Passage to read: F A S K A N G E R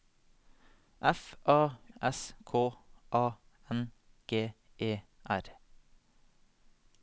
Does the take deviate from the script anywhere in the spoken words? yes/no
no